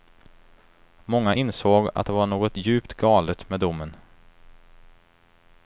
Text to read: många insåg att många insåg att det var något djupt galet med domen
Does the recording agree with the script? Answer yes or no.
no